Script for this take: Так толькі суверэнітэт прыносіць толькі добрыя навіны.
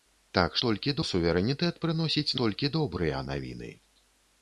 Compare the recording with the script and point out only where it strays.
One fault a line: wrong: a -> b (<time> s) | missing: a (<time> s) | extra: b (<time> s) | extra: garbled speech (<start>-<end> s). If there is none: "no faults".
no faults